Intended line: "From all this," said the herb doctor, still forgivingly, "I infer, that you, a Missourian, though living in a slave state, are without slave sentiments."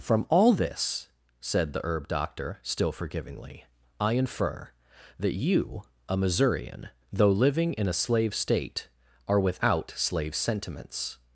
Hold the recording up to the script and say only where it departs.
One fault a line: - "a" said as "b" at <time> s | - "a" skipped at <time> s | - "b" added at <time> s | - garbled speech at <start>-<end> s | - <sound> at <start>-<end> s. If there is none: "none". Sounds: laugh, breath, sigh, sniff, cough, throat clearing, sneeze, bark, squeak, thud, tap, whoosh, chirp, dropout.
none